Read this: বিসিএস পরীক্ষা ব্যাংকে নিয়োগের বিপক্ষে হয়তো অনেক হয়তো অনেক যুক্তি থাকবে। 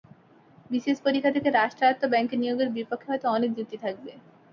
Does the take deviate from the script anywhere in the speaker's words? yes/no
yes